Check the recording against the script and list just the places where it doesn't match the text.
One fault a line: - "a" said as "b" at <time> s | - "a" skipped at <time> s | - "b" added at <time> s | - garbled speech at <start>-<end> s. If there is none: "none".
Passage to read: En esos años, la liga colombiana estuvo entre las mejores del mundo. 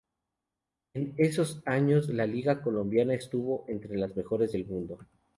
none